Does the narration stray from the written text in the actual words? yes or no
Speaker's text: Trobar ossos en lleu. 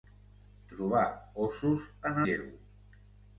no